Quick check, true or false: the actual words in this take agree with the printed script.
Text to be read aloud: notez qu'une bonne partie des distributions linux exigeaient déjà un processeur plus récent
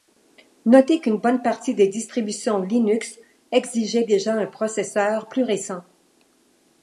true